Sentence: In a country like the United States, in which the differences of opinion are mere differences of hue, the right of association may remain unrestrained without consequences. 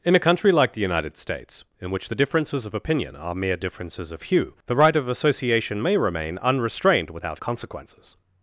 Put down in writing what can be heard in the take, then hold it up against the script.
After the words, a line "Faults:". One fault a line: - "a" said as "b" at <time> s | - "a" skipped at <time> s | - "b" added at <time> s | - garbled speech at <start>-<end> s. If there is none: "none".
In a country like the United States, in which the differences of opinion are mere differences of hue, the right of association may remain unrestrained without consequences.
Faults:
none